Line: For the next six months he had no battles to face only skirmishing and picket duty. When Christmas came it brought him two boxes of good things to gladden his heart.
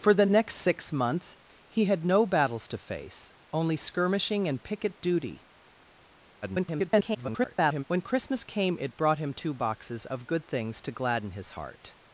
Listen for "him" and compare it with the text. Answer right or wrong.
right